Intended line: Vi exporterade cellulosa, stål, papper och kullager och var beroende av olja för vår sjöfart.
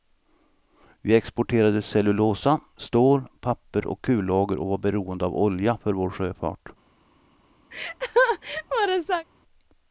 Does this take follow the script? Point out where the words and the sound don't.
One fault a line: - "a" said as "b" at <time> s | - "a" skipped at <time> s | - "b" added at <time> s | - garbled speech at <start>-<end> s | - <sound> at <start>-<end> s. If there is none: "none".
- laugh at 7.7-9.3 s